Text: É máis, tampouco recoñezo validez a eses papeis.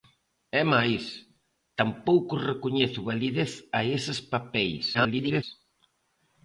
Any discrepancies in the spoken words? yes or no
yes